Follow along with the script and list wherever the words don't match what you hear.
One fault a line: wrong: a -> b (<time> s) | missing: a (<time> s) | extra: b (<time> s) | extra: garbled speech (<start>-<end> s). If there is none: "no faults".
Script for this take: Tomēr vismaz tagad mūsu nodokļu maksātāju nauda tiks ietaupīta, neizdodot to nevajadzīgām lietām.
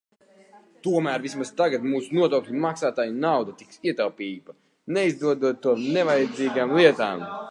no faults